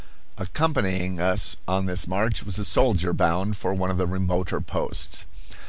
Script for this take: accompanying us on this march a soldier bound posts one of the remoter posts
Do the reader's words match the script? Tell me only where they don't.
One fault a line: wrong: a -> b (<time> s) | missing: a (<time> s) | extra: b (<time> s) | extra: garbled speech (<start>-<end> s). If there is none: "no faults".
extra: was (2.4 s)
wrong: posts -> for (3.6 s)